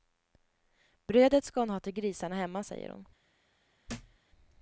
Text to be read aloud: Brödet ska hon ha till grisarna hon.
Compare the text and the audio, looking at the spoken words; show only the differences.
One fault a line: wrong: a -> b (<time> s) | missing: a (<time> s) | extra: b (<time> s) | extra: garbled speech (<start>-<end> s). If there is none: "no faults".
extra: hemma säger (2.4 s)